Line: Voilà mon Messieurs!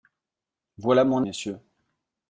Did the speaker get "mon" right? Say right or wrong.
right